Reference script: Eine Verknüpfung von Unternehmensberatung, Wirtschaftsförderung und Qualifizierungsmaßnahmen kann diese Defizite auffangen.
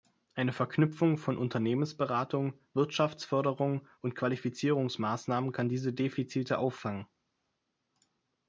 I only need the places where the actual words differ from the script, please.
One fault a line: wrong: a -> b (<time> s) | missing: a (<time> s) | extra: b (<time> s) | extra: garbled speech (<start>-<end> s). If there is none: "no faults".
no faults